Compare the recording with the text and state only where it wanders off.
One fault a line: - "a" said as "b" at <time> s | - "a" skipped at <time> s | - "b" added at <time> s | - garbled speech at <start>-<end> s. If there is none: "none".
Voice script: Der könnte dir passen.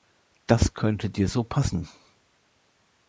- "Der" said as "Das" at 0.5 s
- "so" added at 1.3 s